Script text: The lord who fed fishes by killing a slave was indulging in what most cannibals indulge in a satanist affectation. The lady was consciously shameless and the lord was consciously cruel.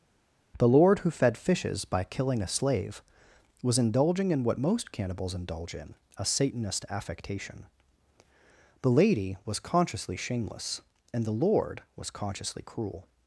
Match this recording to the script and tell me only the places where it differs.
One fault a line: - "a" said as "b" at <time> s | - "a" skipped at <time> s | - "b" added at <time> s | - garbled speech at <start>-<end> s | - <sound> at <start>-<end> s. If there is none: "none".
none